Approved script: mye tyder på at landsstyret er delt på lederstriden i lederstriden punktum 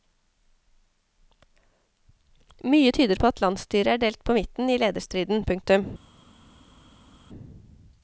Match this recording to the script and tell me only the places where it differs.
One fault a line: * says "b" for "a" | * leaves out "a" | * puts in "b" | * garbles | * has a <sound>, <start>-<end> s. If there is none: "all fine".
* says "midten" for "lederstriden"